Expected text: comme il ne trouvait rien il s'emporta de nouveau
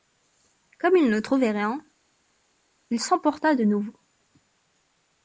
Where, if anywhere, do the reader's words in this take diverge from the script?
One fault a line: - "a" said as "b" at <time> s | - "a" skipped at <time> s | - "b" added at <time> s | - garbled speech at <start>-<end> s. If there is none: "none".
none